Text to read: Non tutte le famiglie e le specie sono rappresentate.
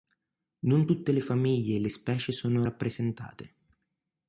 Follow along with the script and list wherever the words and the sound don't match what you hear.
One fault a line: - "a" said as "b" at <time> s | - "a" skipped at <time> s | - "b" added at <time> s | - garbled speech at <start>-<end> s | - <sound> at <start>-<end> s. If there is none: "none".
none